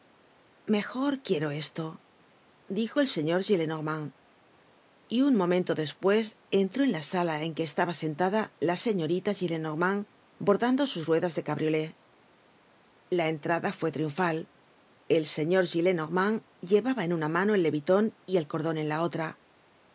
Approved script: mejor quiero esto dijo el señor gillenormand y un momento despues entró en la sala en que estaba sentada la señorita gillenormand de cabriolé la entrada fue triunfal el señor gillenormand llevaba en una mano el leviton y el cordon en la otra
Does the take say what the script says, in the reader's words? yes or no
no